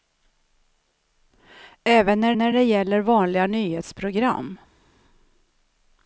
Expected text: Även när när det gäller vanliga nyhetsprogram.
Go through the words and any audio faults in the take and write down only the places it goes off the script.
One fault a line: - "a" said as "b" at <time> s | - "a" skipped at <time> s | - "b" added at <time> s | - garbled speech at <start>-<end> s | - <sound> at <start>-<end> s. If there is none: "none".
none